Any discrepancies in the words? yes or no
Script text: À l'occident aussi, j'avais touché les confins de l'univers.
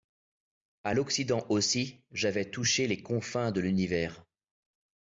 no